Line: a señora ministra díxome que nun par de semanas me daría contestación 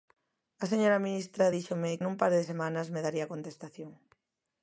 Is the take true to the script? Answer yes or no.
no